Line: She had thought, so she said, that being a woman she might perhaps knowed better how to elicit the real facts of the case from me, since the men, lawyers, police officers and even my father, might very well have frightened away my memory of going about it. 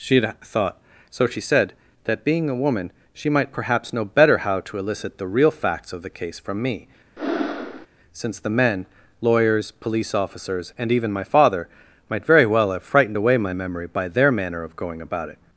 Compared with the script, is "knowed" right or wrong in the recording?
wrong